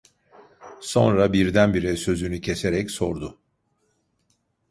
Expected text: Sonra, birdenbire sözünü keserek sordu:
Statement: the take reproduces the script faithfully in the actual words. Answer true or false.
true